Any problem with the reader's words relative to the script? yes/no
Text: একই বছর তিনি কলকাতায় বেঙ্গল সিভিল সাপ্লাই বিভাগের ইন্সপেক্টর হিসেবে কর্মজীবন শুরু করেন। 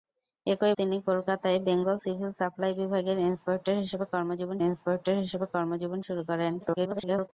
yes